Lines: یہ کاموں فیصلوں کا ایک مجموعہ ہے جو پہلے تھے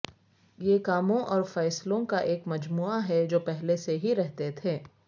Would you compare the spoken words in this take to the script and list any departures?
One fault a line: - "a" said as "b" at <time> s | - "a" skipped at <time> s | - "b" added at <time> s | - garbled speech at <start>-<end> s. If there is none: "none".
- "اور" added at 1.3 s
- "سے ہی رہتے" added at 3.9 s